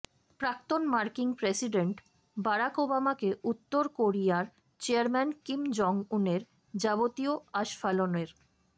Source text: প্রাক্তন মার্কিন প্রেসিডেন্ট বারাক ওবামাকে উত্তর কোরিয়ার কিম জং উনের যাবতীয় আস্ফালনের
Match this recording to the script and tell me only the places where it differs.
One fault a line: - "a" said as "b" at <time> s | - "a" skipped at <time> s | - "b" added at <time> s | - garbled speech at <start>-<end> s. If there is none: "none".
- "চেয়ারম্যান" added at 4.8 s